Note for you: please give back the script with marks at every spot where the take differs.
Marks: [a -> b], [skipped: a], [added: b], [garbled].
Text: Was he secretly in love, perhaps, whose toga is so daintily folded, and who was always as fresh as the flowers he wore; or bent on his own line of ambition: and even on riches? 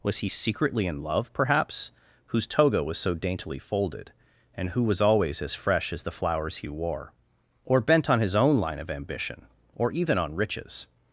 Was he secretly in love, perhaps, whose toga [is -> was] so daintily folded, and who was always as fresh as the flowers he wore; or bent on his own line of ambition: [and -> or] even on riches?